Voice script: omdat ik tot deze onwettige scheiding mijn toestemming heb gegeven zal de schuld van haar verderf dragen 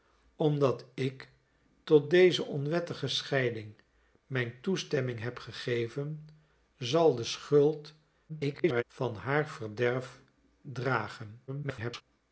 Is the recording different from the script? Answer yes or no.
yes